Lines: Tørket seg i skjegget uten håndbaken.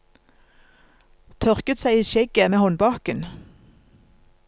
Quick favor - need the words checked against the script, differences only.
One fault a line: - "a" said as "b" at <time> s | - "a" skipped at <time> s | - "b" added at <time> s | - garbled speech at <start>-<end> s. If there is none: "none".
- "uten" said as "med" at 2.5 s